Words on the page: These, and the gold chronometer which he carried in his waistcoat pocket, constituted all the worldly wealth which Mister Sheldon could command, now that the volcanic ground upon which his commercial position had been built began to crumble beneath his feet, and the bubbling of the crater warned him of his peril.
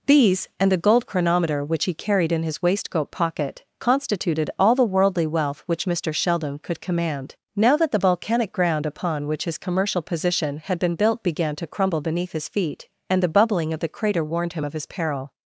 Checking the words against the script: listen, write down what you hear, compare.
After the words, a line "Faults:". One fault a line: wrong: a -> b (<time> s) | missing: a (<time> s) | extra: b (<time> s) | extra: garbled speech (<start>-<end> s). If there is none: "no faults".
These, and the gold chronometer which he carried in his waistcoat pocket, constituted all the worldly wealth which Mister Sheldon could command, now that the volcanic ground upon which his commercial position had been built began to crumble beneath his feet, and the bubbling of the crater warned him of his peril.
Faults:
no faults